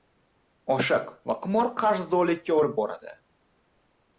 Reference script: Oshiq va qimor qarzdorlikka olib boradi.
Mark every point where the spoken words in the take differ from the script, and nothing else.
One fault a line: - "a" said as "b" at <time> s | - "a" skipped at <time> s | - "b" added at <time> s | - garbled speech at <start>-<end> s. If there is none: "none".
none